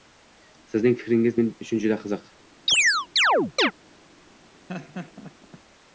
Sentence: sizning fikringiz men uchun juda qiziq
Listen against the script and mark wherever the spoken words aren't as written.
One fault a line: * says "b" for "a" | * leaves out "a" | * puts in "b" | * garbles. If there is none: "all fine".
all fine